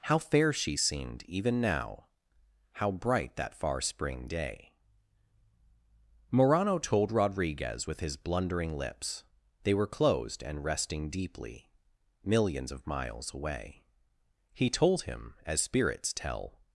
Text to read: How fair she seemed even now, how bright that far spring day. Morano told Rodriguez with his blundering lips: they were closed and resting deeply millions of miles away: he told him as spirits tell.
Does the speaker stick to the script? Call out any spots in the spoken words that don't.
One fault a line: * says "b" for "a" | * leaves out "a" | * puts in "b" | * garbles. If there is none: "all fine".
all fine